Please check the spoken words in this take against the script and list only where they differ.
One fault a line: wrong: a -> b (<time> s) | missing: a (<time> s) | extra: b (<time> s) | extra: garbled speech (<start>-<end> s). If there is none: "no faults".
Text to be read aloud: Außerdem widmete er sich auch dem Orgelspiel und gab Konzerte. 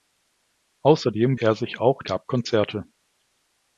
missing: widmete (1.4 s)
missing: dem Orgelspiel und (2.0 s)